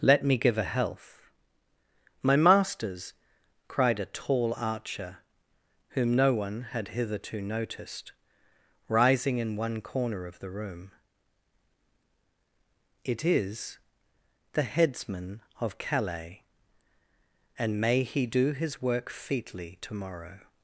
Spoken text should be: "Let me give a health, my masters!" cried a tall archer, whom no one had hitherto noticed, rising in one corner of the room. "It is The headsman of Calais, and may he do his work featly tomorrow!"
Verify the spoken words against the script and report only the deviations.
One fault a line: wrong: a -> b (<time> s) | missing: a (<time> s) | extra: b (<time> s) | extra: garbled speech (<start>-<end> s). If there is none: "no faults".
no faults